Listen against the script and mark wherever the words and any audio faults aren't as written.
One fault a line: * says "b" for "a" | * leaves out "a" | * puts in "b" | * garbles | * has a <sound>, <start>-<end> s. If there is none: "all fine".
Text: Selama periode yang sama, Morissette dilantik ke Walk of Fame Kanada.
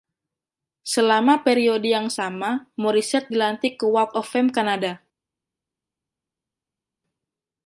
all fine